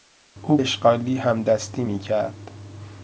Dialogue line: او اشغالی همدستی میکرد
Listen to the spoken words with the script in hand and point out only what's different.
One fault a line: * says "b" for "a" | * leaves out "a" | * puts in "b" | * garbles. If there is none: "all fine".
all fine